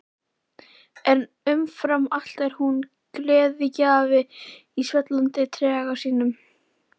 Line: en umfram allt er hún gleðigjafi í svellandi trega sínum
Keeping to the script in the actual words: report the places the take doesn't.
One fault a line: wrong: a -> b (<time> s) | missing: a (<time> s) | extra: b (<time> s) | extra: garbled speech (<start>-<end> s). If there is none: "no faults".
no faults